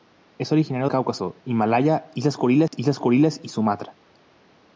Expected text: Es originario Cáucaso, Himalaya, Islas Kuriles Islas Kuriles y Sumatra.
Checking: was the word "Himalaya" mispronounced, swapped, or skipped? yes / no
no